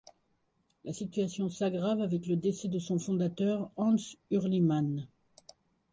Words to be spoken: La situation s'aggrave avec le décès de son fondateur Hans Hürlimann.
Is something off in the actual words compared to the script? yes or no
no